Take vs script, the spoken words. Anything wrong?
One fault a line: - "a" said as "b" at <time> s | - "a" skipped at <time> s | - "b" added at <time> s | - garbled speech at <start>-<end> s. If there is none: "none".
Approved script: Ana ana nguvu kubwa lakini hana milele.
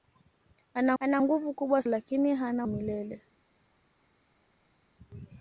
none